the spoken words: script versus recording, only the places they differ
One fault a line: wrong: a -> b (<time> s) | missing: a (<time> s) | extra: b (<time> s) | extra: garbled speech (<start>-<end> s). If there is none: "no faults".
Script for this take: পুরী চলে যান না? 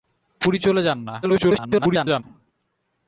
extra: garbled speech (1.2-2.2 s)